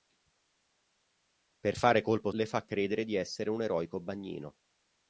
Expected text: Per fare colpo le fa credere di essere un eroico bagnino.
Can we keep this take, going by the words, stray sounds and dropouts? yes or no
yes